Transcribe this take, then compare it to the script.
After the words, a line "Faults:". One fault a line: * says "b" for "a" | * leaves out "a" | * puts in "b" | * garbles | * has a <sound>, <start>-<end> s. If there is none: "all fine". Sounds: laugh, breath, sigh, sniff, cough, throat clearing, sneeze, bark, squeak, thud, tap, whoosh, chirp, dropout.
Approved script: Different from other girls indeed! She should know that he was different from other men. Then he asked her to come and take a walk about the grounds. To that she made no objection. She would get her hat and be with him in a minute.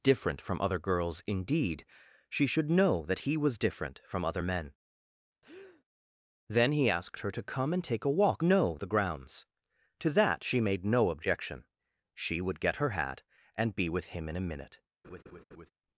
Different from other girls indeed! She should know that he was different from other men. Then he asked her to come and take a walk know the grounds. To that she made no objection. She would get her hat and be with him in a minute.
Faults:
* has a breath, 5.4-5.8 s
* says "know" for "about"
* has a laugh, 15.0-15.7 s